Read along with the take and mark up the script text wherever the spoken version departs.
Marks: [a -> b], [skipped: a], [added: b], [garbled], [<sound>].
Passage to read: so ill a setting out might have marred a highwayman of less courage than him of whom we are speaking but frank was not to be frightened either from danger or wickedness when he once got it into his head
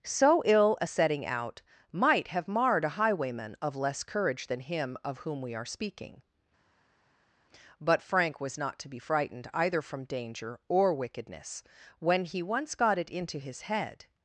so ill a setting out might have marred a highwayman of less courage than him of whom we are speaking but frank was not to be frightened either from danger or wickedness when he once got it into his head